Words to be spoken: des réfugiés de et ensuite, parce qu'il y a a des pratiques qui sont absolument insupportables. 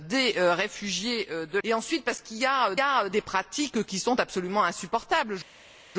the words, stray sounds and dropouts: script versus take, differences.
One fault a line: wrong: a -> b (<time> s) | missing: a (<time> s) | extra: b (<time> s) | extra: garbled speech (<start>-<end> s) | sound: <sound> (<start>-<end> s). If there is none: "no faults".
no faults